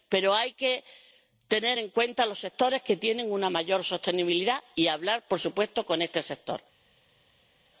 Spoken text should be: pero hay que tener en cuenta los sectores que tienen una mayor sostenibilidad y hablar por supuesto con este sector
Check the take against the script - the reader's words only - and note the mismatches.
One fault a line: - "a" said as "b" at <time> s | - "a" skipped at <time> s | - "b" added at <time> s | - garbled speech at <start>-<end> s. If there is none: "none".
none